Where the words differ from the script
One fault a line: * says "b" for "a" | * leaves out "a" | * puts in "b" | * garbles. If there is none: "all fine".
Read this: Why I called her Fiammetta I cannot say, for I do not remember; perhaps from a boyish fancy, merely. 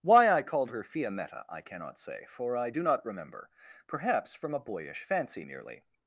all fine